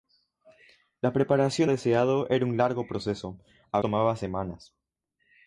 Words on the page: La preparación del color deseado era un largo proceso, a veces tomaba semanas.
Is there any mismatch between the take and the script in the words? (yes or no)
yes